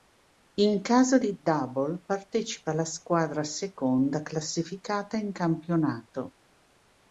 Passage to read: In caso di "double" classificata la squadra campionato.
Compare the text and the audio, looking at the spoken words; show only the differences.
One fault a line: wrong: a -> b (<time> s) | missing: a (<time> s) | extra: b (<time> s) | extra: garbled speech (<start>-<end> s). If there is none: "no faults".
wrong: classificata -> partecipa (2.1 s)
extra: seconda classificata in (3.4 s)